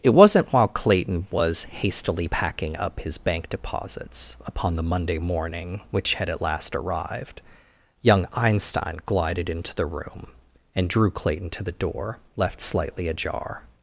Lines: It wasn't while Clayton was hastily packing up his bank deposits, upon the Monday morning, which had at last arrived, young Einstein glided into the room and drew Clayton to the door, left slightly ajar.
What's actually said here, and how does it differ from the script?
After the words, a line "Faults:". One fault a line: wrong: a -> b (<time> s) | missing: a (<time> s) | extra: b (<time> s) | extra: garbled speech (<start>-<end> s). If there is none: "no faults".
It wasn't while Clayton was hastily packing up his bank deposits, upon the Monday morning, which had at last arrived, young Einstein glided into the room and drew Clayton to the door, left slightly ajar.
Faults:
no faults